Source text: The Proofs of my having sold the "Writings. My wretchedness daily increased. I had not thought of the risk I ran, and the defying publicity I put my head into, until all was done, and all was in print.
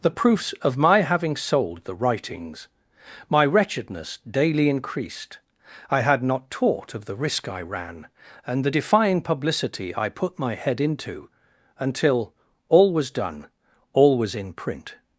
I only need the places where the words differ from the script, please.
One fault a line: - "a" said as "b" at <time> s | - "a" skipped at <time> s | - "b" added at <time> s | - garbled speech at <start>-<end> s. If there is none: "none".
- "thought" said as "taught" at 6.5 s
- "and" skipped at 13.5 s